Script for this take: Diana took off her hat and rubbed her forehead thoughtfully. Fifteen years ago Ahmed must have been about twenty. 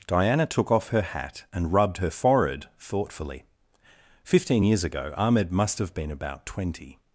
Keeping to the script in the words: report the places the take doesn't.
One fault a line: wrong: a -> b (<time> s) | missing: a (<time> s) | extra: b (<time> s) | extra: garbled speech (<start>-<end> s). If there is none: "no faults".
no faults